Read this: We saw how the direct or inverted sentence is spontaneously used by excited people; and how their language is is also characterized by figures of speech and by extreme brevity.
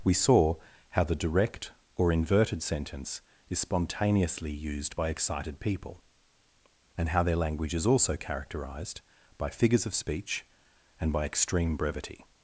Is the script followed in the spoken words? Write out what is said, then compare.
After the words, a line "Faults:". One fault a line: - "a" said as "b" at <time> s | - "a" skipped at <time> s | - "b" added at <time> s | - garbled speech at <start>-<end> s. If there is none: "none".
We saw how the direct or inverted sentence is spontaneously used by excited people; and how their language is also characterized by figures of speech and by extreme brevity.
Faults:
- "is" skipped at 7.9 s